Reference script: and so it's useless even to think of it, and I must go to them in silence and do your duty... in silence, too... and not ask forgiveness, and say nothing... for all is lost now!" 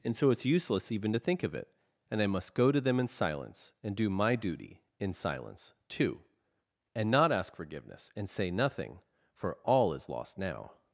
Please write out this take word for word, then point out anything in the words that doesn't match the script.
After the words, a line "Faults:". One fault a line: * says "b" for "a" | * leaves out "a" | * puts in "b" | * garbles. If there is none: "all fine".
and so it's useless even to think of it, and I must go to them in silence and do my duty... in silence, too... and not ask forgiveness, and say nothing... for all is lost now!"
Faults:
* says "my" for "your"